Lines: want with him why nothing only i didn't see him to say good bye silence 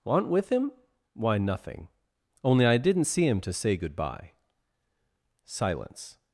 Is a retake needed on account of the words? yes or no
no